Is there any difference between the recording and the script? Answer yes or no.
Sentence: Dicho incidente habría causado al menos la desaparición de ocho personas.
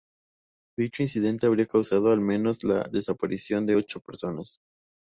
no